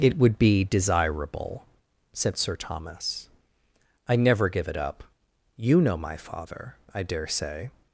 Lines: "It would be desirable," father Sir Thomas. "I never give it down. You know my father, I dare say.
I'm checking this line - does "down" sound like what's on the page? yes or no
no